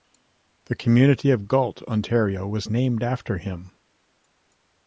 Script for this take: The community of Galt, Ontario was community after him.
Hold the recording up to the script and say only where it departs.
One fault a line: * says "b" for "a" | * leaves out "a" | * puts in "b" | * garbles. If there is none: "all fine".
* says "named" for "community"